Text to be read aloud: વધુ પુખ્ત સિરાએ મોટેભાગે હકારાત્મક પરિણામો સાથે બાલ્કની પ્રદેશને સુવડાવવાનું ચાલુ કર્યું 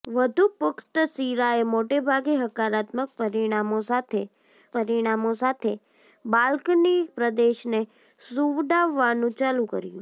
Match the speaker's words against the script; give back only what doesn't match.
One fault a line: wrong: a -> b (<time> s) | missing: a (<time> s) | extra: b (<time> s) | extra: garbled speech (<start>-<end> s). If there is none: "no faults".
extra: પરિણામો સાથે (4.7 s)